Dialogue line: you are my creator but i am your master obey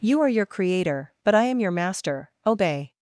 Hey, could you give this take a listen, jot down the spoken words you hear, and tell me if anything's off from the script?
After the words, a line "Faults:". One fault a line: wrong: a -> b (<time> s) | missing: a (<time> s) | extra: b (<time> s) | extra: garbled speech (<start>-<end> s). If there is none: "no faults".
you are your creator but i am your master obey
Faults:
wrong: my -> your (0.3 s)